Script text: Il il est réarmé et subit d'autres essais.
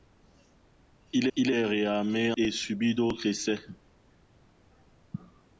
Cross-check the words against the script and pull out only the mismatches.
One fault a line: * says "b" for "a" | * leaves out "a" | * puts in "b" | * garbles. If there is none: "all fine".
all fine